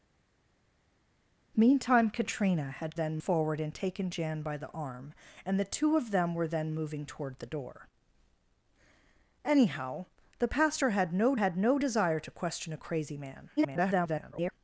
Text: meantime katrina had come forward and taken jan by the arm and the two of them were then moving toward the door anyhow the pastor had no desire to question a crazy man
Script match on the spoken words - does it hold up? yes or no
no